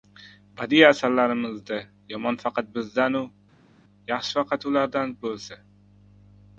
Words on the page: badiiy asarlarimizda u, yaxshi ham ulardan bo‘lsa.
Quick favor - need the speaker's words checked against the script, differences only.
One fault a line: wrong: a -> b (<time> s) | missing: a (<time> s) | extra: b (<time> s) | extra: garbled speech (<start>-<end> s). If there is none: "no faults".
extra: yomon faqat bizdan (2.1 s)
wrong: ham -> faqat (4.4 s)